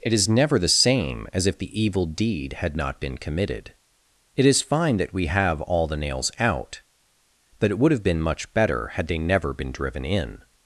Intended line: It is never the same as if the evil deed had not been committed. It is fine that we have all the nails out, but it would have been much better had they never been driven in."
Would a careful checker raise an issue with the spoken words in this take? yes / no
no